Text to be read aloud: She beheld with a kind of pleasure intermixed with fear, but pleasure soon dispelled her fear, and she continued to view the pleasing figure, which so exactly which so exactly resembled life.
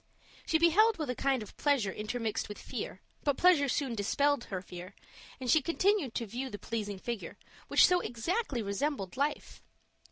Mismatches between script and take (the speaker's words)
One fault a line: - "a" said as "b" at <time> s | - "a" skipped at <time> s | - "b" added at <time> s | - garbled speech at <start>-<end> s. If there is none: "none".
- "which so exactly" skipped at 8.6 s